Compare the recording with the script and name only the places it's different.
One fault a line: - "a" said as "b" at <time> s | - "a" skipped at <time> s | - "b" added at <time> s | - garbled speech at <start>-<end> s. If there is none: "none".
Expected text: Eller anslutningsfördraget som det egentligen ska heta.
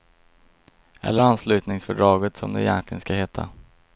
none